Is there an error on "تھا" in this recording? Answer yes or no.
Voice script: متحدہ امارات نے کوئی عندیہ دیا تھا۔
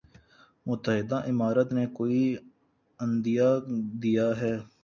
yes